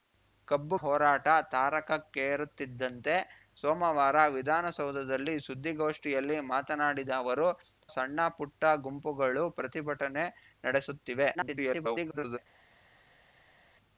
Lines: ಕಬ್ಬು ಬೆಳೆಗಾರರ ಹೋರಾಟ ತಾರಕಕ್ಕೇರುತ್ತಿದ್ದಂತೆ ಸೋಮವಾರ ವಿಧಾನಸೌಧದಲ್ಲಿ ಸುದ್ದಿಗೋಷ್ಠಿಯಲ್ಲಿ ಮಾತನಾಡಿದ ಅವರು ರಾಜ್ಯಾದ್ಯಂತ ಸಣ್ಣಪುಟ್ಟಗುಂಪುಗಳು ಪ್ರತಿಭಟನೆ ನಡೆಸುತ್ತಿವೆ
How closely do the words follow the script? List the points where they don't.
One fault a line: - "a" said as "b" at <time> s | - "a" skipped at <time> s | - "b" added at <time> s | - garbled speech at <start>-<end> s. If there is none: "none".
- "ಬೆಳೆಗಾರರ" skipped at 0.8 s
- "ರಾಜ್ಯಾದ್ಯಂತ" skipped at 7.5 s
- garbled speech at 11.3-12.4 s